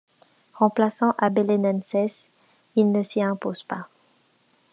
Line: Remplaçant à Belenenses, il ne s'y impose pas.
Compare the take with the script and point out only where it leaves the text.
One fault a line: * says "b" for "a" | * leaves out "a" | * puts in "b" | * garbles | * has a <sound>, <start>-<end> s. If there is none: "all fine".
all fine